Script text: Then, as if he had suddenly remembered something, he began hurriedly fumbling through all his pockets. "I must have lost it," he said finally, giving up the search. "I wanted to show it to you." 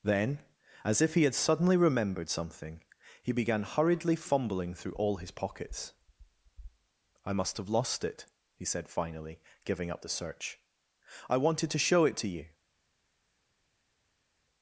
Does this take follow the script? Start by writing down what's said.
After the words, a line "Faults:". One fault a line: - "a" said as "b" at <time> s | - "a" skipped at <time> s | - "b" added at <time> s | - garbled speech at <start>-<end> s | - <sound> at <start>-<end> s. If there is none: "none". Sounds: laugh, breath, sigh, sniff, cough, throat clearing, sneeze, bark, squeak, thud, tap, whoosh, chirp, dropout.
Then, as if he had suddenly remembered something, he began hurriedly fumbling through all his pockets. "I must have lost it," he said finally, giving up the search. "I wanted to show it to you."
Faults:
none